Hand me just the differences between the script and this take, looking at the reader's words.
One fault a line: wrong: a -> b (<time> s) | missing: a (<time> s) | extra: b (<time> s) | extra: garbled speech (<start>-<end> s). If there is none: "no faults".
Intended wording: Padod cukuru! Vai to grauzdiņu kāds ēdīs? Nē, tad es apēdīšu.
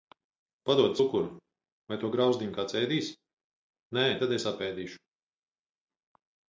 no faults